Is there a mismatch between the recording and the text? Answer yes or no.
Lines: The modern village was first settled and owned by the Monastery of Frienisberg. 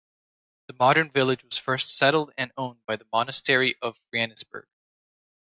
no